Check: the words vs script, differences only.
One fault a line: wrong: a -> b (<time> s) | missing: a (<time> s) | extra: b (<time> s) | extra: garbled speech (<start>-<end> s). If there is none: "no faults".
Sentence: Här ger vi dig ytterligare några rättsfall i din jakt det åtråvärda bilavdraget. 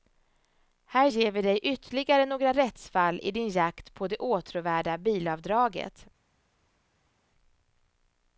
extra: på (3.9 s)